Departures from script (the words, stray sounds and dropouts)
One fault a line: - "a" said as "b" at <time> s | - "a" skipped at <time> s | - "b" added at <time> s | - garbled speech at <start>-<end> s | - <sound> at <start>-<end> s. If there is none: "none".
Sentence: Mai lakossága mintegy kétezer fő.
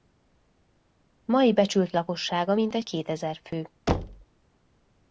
- "becsült" added at 1.5 s
- thud at 3.9-4.3 s